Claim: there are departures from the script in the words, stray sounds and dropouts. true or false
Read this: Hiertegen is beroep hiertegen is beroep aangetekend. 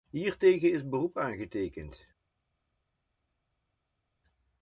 true